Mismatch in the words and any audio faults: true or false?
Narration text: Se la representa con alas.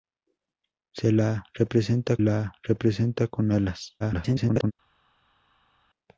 true